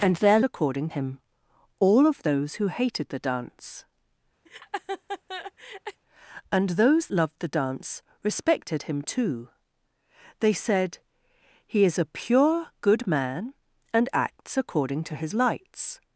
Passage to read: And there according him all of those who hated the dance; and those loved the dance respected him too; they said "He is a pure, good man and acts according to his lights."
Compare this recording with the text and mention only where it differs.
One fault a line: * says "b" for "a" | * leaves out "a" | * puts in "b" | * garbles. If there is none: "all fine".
all fine